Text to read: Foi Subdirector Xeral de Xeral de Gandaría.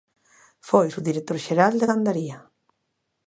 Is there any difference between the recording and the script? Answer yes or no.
yes